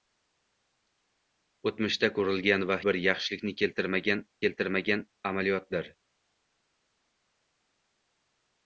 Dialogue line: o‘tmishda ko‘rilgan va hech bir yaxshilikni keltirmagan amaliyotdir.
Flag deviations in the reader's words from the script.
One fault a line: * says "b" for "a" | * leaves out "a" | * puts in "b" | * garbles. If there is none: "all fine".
* leaves out "hech"
* puts in "keltirmagan"